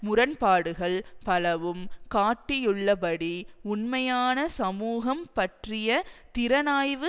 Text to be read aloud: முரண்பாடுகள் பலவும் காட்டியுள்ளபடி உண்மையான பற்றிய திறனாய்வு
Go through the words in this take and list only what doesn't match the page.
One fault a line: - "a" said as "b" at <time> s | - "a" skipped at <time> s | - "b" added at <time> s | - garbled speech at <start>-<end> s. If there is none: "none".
- "சமூகம்" added at 4.6 s